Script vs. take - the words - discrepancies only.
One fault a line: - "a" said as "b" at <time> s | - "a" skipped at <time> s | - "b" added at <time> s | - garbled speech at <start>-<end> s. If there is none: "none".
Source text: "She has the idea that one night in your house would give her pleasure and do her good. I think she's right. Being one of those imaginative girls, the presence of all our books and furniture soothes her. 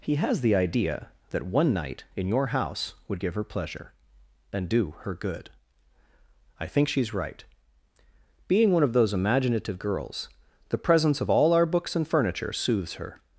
- "She" said as "He" at 0.0 s